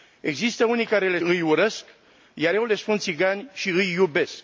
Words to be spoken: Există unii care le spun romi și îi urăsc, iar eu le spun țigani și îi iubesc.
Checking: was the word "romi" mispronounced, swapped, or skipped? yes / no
yes